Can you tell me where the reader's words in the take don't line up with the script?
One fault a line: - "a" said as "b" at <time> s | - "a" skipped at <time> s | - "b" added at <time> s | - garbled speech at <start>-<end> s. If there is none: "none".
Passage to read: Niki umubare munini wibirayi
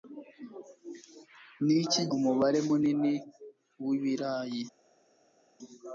none